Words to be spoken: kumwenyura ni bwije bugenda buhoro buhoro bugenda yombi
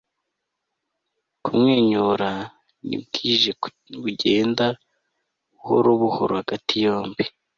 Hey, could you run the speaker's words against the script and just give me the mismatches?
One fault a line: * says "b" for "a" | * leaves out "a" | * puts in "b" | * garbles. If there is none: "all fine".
* says "hagati" for "bugenda"